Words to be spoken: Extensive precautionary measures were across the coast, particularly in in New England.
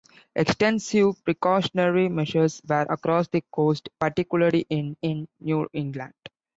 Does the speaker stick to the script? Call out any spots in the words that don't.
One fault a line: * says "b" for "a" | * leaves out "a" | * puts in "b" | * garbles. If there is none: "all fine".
all fine